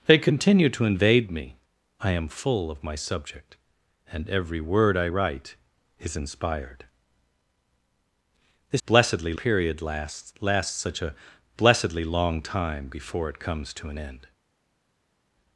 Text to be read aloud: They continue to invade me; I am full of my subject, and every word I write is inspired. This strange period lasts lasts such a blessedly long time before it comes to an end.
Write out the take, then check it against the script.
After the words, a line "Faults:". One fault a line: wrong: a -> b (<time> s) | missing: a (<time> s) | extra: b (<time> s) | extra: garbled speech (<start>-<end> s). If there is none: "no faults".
They continue to invade me; I am full of my subject, and every word I write is inspired. This blessedly period lasts lasts such a blessedly long time before it comes to an end.
Faults:
wrong: strange -> blessedly (8.9 s)